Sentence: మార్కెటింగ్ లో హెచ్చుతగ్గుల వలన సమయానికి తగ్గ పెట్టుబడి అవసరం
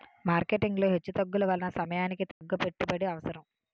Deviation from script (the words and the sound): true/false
true